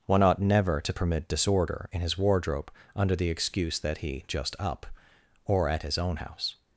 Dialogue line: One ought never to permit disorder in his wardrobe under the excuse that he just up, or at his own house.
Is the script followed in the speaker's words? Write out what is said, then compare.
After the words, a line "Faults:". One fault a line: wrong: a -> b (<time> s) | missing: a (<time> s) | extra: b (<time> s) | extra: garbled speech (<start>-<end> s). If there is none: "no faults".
One ought never to permit disorder in his wardrobe under the excuse that he just up, or at his own house.
Faults:
no faults